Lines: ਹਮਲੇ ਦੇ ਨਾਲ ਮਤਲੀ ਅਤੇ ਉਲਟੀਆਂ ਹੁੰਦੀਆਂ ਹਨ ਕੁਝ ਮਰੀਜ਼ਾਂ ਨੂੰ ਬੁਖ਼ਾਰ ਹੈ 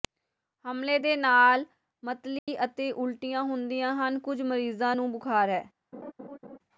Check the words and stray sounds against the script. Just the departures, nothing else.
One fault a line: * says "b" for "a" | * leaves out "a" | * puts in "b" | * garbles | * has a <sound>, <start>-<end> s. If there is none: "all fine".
* has a dropout, 2.4-2.5 s
* has a laugh, 5.9-6.6 s